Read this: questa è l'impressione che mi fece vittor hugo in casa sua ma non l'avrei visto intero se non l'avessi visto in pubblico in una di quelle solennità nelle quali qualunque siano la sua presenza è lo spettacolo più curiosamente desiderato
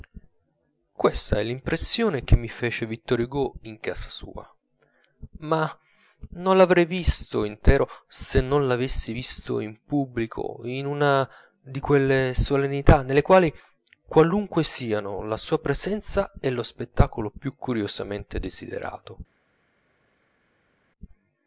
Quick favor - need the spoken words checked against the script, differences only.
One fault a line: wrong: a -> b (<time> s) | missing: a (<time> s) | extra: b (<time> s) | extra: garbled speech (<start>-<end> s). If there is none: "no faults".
no faults